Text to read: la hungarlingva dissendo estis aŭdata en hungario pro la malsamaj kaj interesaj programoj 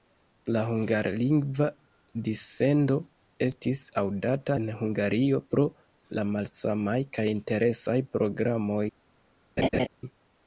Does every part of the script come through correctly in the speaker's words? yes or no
yes